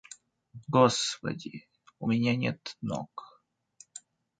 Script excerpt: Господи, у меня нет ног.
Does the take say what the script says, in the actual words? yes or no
yes